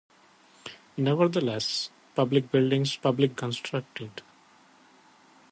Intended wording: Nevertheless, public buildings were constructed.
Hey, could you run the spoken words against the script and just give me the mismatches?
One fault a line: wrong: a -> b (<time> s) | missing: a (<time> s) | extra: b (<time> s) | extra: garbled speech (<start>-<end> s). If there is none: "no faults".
wrong: were -> public (3.0 s)